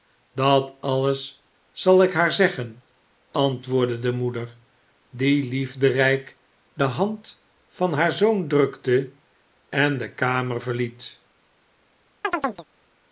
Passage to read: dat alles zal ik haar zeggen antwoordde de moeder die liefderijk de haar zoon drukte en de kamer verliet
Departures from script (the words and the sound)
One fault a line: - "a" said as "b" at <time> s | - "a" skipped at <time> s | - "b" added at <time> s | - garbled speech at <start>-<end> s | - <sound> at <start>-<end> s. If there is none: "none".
- "hand van" added at 6.8 s
- chirp at 12.2-12.7 s